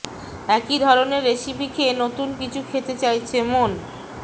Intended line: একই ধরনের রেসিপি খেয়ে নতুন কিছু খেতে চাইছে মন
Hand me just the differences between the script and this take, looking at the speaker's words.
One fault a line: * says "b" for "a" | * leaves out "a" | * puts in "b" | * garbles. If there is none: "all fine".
all fine